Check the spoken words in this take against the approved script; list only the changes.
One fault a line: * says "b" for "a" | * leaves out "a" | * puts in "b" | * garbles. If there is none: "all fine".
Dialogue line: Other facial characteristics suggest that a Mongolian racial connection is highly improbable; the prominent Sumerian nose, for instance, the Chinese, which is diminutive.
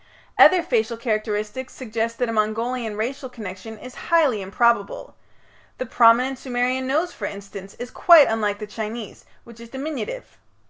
* puts in "is quite unlike"